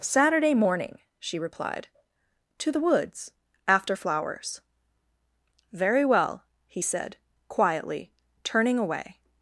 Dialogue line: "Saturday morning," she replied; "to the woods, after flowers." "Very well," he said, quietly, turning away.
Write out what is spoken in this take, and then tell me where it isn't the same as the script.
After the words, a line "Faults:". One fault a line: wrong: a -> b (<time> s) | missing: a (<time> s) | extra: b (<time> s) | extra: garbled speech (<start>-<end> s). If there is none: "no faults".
"Saturday morning," she replied; "to the woods, after flowers." "Very well," he said, quietly, turning away.
Faults:
no faults